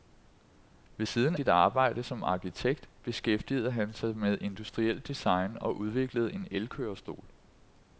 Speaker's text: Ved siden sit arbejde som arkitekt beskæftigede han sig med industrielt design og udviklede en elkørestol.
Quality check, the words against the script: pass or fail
pass